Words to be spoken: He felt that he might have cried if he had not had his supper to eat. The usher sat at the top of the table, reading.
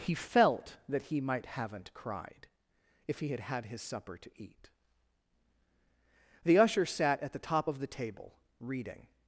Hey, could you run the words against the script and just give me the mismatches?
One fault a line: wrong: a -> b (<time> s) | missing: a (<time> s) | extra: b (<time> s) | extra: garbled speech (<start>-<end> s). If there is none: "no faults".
wrong: have -> haven't (1.4 s)
missing: not (3.4 s)